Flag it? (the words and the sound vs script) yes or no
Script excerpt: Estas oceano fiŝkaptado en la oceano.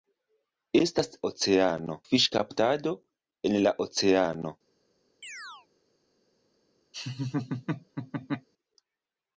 yes